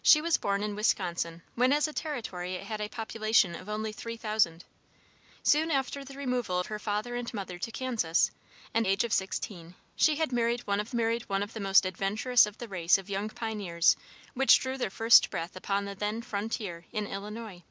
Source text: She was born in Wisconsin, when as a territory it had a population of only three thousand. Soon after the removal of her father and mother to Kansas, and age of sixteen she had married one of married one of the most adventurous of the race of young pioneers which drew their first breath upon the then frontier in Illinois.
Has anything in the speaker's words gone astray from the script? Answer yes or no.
no